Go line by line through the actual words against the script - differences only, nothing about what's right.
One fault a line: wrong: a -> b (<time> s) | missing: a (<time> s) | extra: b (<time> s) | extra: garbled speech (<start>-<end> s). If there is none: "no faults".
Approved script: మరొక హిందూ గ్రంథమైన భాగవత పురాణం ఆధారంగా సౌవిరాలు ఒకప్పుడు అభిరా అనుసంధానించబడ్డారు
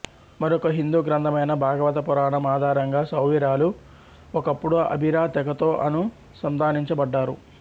extra: తెగతో (5.4 s)